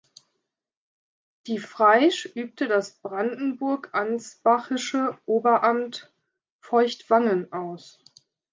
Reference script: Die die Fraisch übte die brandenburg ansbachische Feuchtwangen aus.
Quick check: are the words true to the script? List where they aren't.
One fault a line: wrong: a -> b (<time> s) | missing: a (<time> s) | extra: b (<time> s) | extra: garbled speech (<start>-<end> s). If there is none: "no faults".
missing: die (1.6 s)
wrong: die -> das (2.6 s)
extra: Oberamt (5.2 s)